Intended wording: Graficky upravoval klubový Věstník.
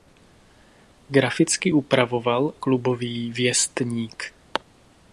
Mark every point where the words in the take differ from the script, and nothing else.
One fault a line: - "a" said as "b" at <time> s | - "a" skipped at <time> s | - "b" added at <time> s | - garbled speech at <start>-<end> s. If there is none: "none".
none